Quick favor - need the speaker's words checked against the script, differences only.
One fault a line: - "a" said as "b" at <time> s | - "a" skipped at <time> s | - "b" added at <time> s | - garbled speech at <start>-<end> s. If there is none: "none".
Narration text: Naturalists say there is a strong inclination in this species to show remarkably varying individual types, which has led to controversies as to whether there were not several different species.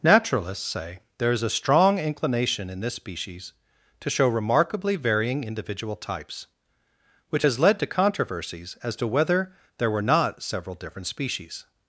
none